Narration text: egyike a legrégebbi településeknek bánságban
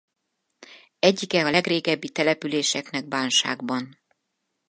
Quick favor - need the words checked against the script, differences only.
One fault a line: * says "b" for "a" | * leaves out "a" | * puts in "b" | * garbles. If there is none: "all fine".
all fine